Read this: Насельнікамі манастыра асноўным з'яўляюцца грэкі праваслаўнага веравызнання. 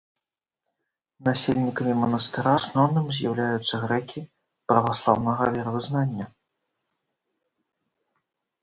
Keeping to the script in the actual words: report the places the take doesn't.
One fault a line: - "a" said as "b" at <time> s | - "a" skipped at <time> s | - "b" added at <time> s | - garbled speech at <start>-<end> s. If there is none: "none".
none